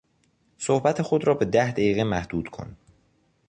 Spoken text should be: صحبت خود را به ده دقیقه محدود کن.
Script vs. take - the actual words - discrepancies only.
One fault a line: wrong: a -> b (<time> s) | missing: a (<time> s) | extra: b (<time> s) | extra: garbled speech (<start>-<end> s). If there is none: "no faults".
no faults